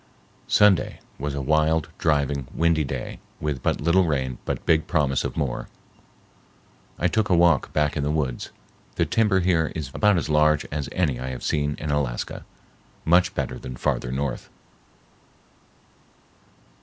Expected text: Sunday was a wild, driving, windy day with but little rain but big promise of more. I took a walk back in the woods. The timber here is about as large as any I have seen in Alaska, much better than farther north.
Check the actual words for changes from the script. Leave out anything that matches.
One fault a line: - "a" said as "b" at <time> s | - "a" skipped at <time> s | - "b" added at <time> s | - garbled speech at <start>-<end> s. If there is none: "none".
none